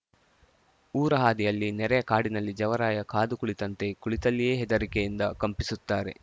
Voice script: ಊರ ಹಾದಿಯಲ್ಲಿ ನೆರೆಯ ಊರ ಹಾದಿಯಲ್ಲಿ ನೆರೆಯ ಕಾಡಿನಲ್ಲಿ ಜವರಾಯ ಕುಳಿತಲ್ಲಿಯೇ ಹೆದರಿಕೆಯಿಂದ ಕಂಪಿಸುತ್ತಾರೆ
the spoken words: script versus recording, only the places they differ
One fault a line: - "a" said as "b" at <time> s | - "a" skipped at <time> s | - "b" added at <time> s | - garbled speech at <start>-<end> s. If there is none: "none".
- "ಊರ ಹಾದಿಯಲ್ಲಿ ನೆರೆಯ ಕಾಡಿನಲ್ಲಿ ಜವರಾಯ" said as "ಕಾಡಿನಲ್ಲಿ ಜವರಾಯ ಕಾದು ಕುಳಿತಂತೆ" at 2.0 s